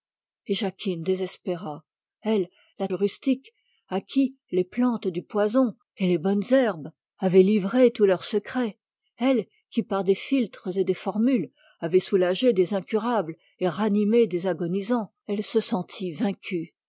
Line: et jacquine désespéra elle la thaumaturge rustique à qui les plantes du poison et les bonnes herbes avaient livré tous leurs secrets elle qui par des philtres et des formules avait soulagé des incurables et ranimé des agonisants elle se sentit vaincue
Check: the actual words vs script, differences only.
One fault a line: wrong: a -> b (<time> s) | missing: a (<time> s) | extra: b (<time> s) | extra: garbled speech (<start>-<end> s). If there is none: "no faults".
missing: thaumaturge (2.9 s)